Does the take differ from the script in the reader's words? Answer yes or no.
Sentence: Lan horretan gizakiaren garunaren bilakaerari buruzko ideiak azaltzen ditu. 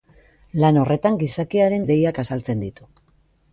yes